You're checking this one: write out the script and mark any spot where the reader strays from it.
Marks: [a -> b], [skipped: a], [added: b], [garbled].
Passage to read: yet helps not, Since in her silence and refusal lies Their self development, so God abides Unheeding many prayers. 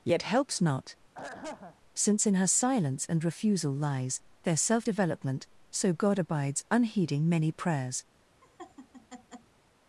yet helps not, Since in her silence and refusal lies Their self development, so God abides Unheeding many prayers.